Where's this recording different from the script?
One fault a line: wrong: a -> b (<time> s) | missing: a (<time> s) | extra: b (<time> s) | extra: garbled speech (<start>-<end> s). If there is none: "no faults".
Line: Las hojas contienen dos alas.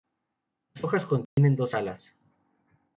no faults